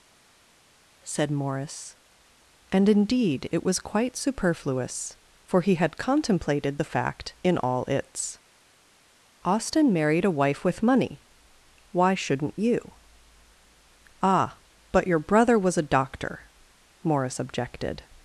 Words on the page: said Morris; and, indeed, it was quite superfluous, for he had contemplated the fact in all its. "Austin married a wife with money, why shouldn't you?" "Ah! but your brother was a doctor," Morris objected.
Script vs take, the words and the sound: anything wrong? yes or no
no